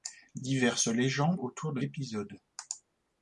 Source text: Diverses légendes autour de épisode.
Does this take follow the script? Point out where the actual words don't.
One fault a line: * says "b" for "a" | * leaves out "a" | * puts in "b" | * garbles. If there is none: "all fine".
all fine